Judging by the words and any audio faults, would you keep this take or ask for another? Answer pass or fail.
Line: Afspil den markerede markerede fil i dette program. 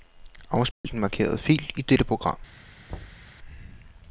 fail